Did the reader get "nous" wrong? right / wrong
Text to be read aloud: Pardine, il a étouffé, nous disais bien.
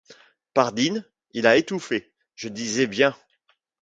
wrong